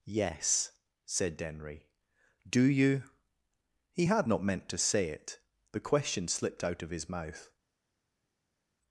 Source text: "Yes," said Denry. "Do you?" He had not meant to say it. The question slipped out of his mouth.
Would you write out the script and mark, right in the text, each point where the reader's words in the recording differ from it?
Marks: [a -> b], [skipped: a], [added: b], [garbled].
"Yes," said Denry. "Do you?" He had not meant to say it. The question slipped out of his mouth.